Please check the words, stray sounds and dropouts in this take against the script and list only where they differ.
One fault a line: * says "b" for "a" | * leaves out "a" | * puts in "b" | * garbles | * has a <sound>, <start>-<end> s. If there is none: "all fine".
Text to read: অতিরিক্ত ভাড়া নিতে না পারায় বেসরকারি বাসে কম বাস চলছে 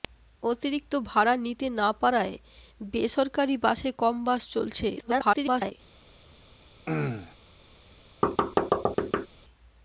* garbles
* has a throat clearing, 6.9-7.4 s
* has a thud, 8.2-9.3 s